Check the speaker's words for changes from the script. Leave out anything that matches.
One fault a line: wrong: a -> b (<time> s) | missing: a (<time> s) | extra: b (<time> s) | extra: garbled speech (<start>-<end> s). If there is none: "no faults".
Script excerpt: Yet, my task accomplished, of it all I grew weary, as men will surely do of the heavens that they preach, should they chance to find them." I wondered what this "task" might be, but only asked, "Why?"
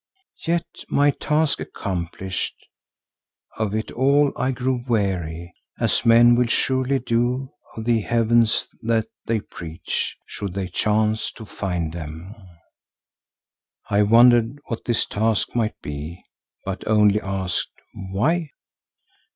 no faults